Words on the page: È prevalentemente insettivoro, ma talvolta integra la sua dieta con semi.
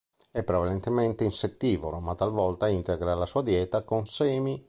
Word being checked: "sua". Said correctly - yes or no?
yes